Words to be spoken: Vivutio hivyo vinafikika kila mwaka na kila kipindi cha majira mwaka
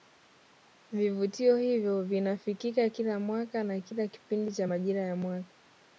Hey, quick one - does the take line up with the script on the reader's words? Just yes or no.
no